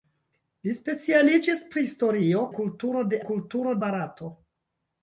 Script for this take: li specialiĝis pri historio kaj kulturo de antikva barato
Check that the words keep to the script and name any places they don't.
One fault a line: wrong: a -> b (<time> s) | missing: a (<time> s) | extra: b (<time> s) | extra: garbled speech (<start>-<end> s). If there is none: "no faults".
missing: kaj (2.4 s)
wrong: antikva -> kulturo (3.3 s)